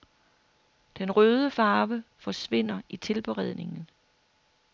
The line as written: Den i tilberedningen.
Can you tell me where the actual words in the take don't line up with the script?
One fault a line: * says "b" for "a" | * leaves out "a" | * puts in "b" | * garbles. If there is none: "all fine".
* puts in "røde farve forsvinder"